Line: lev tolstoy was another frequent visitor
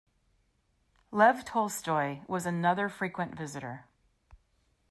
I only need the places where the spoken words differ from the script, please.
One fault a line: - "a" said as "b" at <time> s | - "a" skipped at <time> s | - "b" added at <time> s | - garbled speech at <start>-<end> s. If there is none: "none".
none